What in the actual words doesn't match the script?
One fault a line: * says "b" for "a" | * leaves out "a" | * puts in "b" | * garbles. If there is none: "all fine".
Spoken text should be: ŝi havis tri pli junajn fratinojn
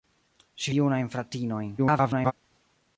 * leaves out "havis tri pli"
* garbles